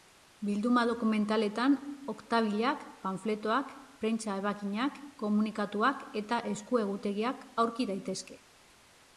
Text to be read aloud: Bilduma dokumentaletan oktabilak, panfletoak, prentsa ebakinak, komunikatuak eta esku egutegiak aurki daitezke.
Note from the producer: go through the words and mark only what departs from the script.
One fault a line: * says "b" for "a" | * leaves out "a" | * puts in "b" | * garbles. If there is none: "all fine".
all fine